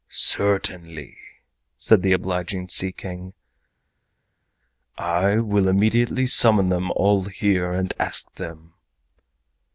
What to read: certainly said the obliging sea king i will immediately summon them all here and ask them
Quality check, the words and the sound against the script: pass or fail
pass